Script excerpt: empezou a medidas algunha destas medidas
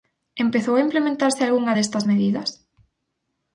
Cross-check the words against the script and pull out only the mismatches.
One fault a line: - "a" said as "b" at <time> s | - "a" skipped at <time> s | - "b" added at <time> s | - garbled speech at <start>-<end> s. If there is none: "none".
- "medidas" said as "implementarse" at 0.9 s